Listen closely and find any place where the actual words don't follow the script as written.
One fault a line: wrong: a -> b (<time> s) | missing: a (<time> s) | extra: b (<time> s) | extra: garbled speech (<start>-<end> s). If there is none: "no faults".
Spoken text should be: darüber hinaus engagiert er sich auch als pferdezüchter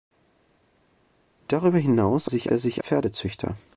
wrong: engagiert -> sich (2.3 s)
missing: auch als (2.8 s)